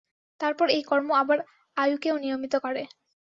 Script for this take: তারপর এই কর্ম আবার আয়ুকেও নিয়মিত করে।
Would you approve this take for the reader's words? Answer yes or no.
yes